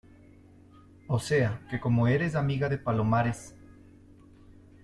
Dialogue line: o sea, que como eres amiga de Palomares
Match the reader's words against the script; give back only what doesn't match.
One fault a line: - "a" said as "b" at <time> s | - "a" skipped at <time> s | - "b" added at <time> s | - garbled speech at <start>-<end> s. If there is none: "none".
none